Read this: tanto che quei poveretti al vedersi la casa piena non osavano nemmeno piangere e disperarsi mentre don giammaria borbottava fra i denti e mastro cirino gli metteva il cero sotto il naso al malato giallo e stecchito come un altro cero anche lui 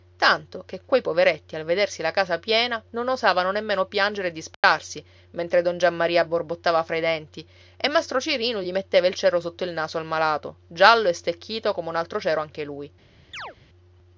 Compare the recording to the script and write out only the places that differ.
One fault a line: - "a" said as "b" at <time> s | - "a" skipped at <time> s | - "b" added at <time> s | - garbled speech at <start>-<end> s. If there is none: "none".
none